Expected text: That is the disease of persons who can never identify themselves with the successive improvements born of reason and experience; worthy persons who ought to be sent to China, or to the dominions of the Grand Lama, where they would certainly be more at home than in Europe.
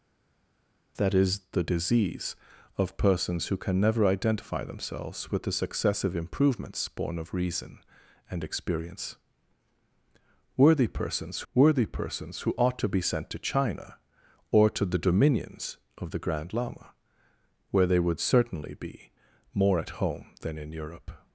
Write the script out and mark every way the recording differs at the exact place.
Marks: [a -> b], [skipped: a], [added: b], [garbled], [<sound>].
That is the disease of persons who can never identify themselves with the successive improvements born of reason and experience; worthy persons [added: worthy persons] who ought to be sent to China, or to the dominions of the Grand Lama, where they would certainly be more at home than in Europe.